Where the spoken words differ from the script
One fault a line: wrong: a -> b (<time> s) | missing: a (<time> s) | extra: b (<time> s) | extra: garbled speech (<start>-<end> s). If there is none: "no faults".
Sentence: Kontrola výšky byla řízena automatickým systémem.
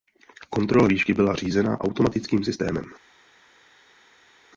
no faults